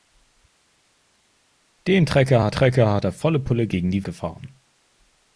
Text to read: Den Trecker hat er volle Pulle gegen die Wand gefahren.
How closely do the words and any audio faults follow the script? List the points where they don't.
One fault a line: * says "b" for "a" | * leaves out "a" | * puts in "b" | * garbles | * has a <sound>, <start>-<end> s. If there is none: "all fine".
* puts in "Trecker hat"
* leaves out "Wand"